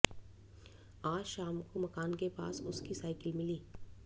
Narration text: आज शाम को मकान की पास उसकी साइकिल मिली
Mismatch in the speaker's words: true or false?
true